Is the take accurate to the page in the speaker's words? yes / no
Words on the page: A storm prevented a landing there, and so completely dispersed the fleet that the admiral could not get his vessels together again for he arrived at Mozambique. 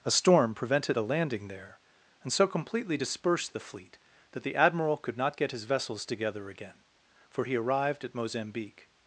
yes